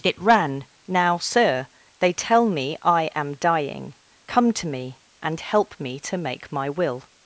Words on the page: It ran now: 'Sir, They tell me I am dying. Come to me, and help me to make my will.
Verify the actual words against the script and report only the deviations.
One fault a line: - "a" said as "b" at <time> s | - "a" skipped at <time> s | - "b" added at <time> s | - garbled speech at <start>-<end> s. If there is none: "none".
none